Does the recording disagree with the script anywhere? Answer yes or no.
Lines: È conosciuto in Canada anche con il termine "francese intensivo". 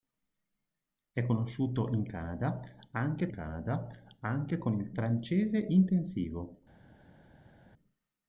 yes